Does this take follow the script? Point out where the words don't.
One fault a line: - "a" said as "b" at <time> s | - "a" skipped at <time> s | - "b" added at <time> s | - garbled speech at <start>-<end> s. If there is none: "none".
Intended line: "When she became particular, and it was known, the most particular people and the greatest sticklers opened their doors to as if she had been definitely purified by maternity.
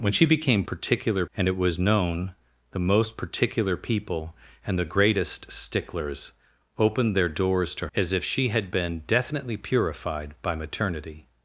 none